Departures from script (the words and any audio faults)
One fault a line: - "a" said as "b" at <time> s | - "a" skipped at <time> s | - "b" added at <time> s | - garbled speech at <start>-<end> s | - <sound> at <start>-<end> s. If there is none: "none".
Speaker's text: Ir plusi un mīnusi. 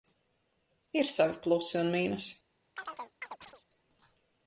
- "savi" added at 1.1 s
- chirp at 2.8-3.6 s